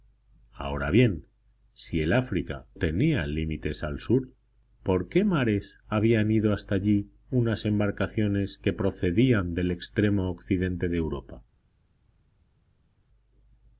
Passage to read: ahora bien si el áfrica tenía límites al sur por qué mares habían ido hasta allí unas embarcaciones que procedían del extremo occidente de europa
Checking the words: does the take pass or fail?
pass